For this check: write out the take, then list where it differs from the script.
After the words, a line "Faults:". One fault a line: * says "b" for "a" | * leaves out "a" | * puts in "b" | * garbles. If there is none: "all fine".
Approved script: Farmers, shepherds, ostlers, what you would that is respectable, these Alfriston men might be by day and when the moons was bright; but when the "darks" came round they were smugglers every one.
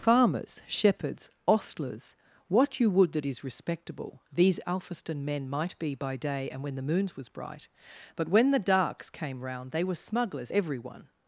Farmers, shepherds, ostlers, what you would that is respectable, these Alfriston men might be by day and when the moons was bright; but when the "darks" came round they were smugglers every one.
Faults:
all fine